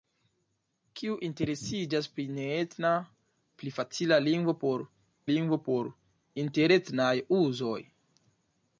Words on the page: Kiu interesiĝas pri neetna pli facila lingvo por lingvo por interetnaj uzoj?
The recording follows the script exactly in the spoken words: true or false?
true